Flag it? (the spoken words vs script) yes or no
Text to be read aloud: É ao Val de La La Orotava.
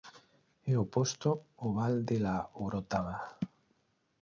yes